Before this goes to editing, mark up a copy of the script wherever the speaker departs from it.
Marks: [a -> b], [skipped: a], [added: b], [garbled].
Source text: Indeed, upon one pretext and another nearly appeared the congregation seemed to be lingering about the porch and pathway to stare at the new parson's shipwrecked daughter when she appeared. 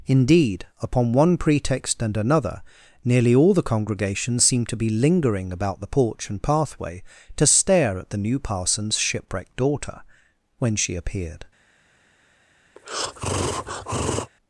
Indeed, upon one pretext and another nearly [appeared -> all] the congregation seemed to be lingering about the porch and pathway to stare at the new parson's shipwrecked daughter when she appeared.